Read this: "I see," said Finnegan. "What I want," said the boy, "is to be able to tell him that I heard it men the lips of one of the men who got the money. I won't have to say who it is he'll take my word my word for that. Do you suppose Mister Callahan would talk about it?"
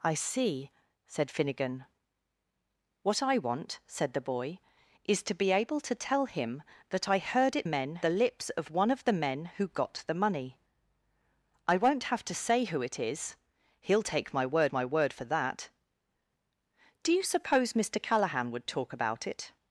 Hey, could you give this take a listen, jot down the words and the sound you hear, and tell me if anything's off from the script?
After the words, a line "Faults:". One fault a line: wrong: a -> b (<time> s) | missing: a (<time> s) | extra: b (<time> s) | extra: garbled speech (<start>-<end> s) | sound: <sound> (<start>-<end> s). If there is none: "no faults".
"I see," said Finnegan. "What I want," said the boy, "is to be able to tell him that I heard it men the lips of one of the men who got the money. I won't have to say who it is he'll take my word my word for that. Do you suppose Mister Callahan would talk about it?"
Faults:
no faults